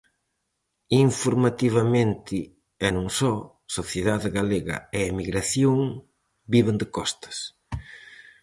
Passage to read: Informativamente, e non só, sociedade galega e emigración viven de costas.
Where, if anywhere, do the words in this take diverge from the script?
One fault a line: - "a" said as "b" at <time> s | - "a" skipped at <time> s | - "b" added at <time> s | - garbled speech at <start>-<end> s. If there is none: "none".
none